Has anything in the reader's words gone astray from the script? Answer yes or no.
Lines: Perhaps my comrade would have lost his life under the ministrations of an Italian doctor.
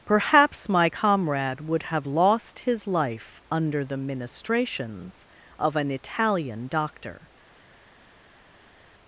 no